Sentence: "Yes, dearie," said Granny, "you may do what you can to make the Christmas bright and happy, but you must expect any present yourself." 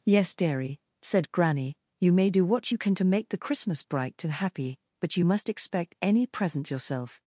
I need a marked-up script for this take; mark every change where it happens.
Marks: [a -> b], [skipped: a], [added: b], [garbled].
"Yes, dearie," said Granny, "you may do what you can to make the Christmas bright and happy, but you must expect any present yourself."